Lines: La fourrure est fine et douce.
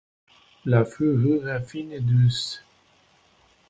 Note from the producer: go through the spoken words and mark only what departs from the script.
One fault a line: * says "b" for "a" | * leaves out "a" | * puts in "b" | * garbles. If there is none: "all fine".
all fine